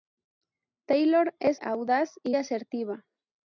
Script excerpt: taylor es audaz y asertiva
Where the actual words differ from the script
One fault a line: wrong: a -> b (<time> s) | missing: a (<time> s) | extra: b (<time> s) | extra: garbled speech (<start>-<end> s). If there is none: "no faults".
no faults